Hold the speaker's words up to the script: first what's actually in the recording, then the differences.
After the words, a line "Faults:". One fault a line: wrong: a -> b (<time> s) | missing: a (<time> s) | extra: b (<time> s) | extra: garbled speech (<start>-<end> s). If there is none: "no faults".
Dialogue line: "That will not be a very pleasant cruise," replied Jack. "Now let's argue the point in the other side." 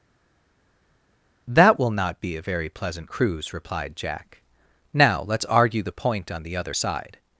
"That will not be a very pleasant cruise," replied Jack. "Now let's argue the point on the other side."
Faults:
wrong: in -> on (6.3 s)